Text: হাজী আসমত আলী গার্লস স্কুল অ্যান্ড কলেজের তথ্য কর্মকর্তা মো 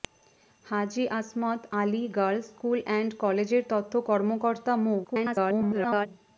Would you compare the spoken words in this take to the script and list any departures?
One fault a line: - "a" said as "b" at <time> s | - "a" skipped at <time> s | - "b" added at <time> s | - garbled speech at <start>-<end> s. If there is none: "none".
- garbled speech at 5.0-6.1 s